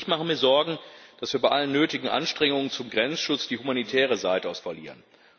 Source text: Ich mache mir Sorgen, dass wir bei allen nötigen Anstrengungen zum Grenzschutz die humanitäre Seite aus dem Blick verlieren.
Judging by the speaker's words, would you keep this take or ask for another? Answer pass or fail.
fail